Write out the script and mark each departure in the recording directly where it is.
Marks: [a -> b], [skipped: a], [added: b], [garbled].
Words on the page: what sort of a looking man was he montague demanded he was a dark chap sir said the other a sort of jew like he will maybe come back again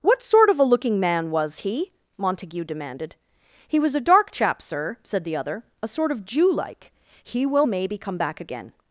what sort of a looking man was he montague demanded he was a dark chap sir said the other a sort of jew like he will maybe come back again